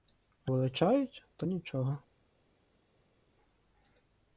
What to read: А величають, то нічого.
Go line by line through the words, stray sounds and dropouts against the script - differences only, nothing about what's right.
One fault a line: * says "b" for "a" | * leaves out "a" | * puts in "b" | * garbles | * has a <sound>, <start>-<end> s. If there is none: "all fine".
all fine